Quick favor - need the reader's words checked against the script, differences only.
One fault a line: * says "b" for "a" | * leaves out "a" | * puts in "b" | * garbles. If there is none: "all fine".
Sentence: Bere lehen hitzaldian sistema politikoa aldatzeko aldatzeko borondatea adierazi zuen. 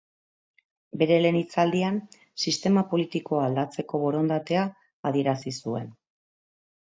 * leaves out "aldatzeko"